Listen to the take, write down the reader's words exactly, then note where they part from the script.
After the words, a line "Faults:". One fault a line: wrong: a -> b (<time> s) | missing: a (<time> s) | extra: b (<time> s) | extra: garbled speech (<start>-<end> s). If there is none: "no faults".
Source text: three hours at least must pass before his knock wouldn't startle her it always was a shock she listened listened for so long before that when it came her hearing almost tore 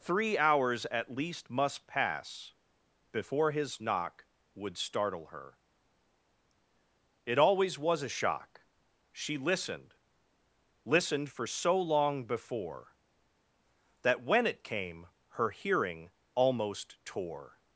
three hours at least must pass before his knock would startle her it always was a shock she listened listened for so long before that when it came her hearing almost tore
Faults:
wrong: wouldn't -> would (4.5 s)